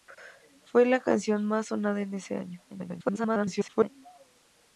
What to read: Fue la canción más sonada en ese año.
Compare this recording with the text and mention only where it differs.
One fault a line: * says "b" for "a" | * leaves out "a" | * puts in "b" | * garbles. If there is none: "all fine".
* garbles